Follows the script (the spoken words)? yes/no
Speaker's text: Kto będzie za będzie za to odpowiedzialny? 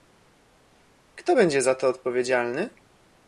no